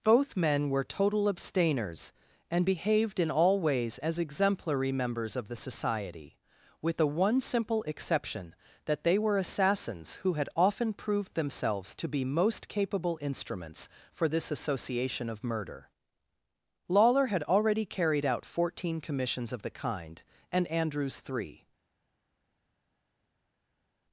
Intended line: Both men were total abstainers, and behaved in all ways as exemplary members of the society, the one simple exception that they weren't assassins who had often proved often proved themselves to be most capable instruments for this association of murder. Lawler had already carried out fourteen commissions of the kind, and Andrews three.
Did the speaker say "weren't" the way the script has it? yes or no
no